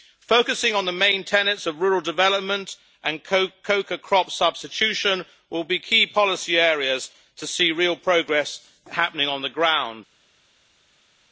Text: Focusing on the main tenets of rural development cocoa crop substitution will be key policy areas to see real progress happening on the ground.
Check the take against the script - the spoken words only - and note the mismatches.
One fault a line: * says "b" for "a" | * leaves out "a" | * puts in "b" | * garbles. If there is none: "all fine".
* puts in "and"